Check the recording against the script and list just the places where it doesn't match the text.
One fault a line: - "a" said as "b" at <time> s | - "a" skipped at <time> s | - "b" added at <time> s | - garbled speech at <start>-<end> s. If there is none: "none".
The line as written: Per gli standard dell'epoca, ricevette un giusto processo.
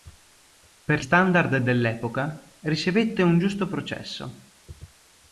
- "gli" skipped at 1.1 s